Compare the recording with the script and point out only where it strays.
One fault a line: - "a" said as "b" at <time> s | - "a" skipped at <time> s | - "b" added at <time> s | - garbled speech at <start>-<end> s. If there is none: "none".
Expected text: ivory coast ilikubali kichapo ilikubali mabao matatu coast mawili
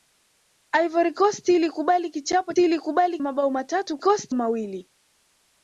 none